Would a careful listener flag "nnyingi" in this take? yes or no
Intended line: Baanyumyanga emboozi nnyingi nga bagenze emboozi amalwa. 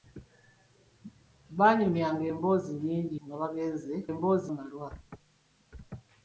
no